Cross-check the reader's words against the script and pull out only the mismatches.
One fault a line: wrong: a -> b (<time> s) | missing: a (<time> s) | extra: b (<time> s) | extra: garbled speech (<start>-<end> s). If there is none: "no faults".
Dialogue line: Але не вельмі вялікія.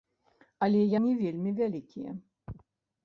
no faults